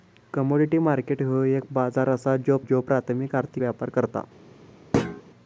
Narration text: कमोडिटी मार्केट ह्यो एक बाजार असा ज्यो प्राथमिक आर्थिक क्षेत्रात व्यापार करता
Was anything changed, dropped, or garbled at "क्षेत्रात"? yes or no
yes